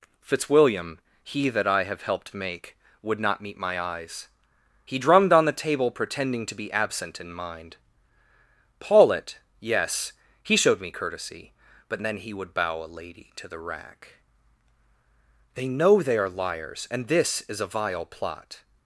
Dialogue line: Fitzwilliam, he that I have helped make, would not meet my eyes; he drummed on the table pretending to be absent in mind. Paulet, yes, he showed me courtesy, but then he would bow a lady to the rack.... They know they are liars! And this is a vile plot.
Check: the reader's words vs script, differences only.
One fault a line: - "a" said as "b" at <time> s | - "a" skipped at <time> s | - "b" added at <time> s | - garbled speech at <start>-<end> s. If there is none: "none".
none